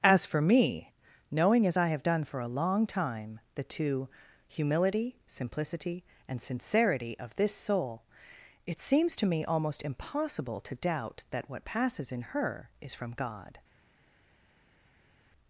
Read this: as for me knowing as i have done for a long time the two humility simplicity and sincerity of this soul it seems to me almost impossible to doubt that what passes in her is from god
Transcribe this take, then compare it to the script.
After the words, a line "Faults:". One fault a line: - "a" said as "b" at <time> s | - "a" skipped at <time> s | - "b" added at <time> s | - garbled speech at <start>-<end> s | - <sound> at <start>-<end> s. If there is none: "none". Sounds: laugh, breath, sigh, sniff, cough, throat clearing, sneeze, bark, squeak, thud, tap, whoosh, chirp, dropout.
as for me knowing as i have done for a long time the two humility simplicity and sincerity of this soul it seems to me almost impossible to doubt that what passes in her is from god
Faults:
none